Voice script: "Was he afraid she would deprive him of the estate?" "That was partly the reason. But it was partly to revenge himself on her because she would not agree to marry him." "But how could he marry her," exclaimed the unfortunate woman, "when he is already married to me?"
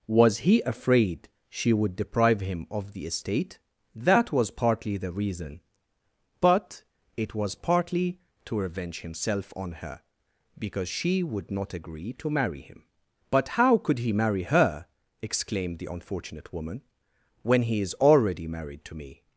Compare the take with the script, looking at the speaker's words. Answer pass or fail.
pass